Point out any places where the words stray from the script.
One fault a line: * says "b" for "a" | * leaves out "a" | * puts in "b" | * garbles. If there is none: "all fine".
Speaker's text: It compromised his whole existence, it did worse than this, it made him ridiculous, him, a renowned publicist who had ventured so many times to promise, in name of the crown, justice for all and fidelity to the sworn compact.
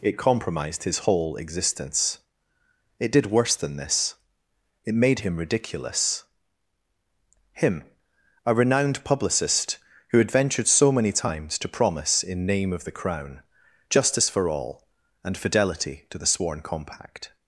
all fine